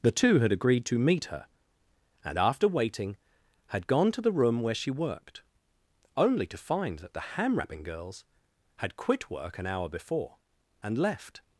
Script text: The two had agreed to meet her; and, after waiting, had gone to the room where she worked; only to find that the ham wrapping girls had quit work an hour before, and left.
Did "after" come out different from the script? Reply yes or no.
no